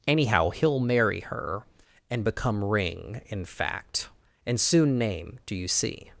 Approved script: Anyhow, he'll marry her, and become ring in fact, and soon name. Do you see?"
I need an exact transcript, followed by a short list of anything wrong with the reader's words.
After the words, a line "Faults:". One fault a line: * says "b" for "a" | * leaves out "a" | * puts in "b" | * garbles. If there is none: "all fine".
Anyhow, he'll marry her, and become ring in fact, and soon name. Do you see?"
Faults:
all fine